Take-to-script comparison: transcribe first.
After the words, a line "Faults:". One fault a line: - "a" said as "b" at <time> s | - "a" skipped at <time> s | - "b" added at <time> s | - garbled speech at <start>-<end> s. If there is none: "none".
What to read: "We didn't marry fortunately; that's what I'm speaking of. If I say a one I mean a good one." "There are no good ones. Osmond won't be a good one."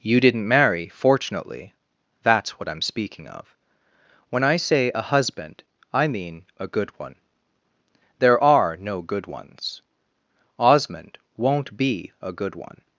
"You didn't marry fortunately; that's what I'm speaking of. When I say a husband I mean a good one." "There are no good ones. Osmond won't be a good one."
Faults:
- "We" said as "You" at 0.0 s
- "If" said as "When" at 4.3 s
- "one" said as "husband" at 5.0 s